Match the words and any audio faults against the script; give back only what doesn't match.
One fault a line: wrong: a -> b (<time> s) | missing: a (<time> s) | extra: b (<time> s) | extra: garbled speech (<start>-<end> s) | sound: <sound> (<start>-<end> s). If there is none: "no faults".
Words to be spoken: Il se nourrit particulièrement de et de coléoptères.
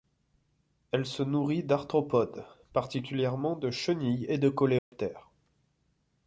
wrong: Il -> Elle (0.9 s)
extra: d'arthropodes (1.6 s)
extra: chenilles (3.7 s)
sound: dropout (4.8-4.9 s)